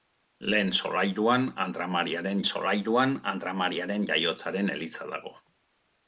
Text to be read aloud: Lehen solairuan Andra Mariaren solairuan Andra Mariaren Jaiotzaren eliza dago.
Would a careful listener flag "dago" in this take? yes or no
no